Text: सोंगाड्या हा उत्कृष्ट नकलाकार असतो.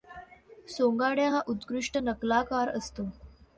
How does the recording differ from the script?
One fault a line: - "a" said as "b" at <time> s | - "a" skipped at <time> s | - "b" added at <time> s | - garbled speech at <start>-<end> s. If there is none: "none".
none